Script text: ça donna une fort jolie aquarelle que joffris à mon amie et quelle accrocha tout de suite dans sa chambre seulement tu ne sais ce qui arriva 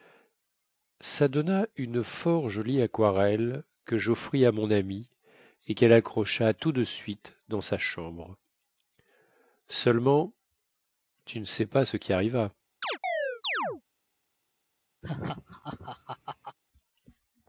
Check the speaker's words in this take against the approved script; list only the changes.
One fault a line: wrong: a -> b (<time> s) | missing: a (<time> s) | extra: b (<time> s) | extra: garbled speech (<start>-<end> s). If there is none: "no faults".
extra: pas (11.7 s)